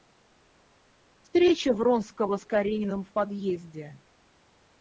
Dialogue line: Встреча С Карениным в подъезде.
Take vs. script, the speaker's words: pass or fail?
fail